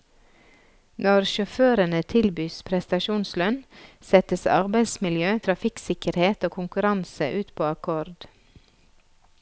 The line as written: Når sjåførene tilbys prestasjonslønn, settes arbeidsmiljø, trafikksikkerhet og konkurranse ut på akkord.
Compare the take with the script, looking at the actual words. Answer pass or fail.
pass